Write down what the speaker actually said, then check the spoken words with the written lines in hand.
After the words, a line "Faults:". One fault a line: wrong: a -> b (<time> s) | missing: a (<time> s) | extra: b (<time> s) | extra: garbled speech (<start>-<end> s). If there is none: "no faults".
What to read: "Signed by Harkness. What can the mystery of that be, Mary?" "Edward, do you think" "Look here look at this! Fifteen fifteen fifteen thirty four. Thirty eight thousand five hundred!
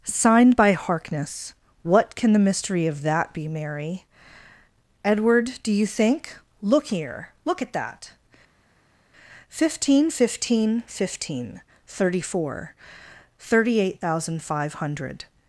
"Signed by Harkness. What can the mystery of that be, Mary?" "Edward, do you think" "Look here look at that! Fifteen fifteen fifteen thirty four. Thirty eight thousand five hundred!
Faults:
wrong: this -> that (7.7 s)